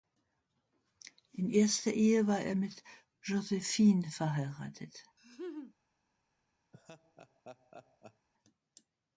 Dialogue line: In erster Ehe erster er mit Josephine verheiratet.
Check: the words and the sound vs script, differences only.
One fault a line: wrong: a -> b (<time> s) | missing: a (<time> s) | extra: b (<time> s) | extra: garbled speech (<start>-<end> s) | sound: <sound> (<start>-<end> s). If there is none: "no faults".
wrong: erster -> war (2.2 s)
sound: laugh (5.2-5.8 s)
sound: laugh (6.7-8.3 s)